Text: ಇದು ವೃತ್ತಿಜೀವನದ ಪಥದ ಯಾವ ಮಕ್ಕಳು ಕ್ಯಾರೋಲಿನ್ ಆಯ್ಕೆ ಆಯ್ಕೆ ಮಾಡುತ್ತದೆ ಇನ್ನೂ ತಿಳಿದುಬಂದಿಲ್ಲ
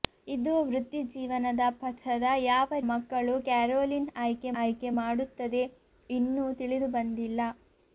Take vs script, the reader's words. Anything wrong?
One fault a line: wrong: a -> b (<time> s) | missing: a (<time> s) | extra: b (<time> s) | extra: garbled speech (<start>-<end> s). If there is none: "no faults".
no faults